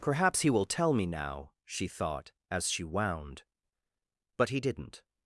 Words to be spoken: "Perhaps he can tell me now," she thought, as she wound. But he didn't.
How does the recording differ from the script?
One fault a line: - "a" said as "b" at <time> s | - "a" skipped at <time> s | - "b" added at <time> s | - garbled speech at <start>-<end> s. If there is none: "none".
- "can" said as "will" at 0.5 s